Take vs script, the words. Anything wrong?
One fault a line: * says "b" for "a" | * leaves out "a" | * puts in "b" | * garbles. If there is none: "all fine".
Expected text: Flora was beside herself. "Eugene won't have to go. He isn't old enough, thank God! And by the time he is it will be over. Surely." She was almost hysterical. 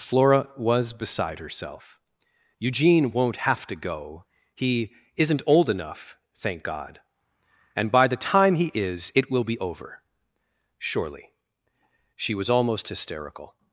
all fine